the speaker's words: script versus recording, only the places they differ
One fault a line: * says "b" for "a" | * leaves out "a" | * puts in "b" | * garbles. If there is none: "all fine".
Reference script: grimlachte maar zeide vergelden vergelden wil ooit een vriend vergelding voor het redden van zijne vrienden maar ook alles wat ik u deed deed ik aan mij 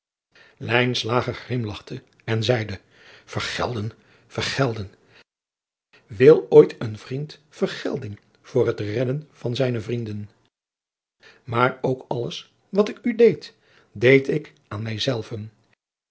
* says "en" for "maar"